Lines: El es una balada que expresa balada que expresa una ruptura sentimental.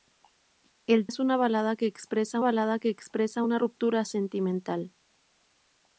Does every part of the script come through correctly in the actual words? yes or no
yes